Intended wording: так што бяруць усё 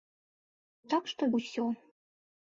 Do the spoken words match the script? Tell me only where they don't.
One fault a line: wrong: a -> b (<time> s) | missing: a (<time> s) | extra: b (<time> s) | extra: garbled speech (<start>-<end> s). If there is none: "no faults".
missing: бяруць (1.3 s)